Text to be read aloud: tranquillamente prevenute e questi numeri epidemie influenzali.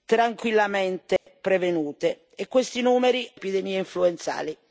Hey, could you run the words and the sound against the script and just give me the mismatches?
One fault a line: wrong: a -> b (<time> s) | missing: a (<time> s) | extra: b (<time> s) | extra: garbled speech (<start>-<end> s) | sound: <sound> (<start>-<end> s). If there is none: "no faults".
sound: dropout (1.2-1.3 s)